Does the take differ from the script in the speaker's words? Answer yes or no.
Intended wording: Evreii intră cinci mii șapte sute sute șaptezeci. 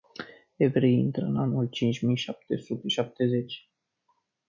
yes